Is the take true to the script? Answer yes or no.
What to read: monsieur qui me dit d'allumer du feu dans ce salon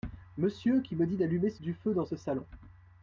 yes